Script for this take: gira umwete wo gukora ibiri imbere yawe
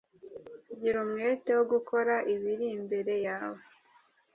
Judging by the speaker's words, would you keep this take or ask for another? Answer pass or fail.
pass